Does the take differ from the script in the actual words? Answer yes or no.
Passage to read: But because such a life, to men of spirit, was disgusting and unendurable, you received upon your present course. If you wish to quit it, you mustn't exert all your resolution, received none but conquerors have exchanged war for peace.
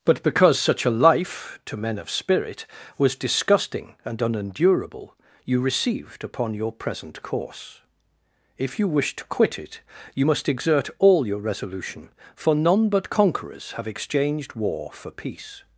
yes